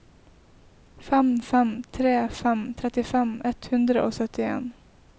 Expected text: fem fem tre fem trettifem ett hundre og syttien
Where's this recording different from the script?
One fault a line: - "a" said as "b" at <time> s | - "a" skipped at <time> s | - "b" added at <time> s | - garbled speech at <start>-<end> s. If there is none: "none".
none